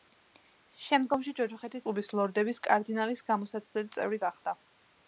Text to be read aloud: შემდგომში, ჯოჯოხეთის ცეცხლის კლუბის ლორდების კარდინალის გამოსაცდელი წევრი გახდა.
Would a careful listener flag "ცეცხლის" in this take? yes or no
yes